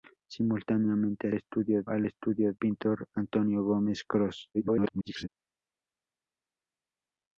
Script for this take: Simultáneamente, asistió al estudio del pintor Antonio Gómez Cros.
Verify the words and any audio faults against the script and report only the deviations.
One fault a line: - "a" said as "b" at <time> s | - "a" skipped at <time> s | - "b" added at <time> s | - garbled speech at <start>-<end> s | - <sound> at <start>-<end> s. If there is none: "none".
- "asistió" said as "estudio" at 1.3 s
- "del" skipped at 2.5 s
- garbled speech at 4.5-5.3 s